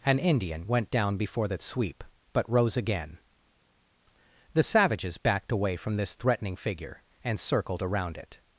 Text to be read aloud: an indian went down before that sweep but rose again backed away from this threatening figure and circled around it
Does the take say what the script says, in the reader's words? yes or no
no